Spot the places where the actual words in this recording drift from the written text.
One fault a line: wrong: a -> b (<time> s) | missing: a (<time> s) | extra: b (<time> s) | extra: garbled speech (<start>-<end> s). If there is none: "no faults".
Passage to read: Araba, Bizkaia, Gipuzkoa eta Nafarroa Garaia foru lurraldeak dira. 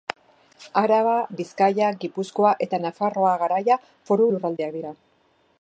no faults